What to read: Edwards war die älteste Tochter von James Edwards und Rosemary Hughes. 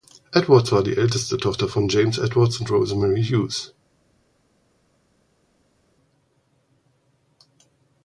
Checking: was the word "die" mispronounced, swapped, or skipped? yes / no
no